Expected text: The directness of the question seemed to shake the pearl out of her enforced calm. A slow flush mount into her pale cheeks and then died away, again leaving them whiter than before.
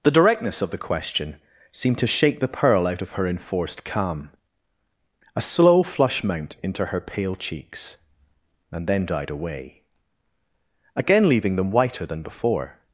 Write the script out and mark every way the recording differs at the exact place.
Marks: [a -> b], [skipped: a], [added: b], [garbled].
The directness of the question seemed to shake the pearl out of her enforced calm. A slow flush mount into her pale cheeks and then died away, again leaving them whiter than before.